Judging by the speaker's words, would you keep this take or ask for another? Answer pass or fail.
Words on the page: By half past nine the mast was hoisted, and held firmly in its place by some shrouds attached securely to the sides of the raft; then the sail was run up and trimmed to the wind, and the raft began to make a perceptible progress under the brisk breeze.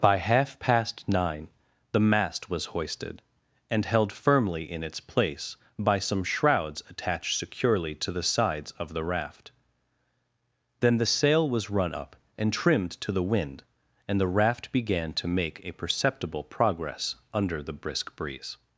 pass